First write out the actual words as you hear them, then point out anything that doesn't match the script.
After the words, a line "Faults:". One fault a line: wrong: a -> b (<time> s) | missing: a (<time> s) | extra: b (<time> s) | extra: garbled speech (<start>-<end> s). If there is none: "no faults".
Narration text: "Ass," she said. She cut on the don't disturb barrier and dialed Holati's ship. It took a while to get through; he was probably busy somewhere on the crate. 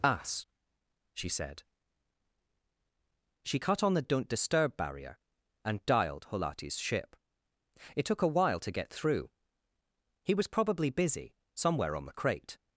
"Ass," she said. She cut on the don't disturb barrier and dialed Holati's ship. It took a while to get through; he was probably busy somewhere on the crate.
Faults:
no faults